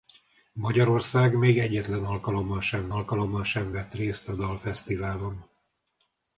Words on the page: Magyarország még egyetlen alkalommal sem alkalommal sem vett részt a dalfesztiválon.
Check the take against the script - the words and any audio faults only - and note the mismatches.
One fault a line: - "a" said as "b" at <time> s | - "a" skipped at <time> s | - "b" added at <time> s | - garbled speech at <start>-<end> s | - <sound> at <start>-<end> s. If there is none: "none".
none